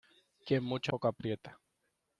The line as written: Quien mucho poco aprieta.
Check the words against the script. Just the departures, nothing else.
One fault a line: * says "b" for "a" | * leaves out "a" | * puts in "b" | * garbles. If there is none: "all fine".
all fine